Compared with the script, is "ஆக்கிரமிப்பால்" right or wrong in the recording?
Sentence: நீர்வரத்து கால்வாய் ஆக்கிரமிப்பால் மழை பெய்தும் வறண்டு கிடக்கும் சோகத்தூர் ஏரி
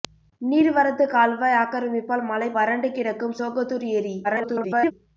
right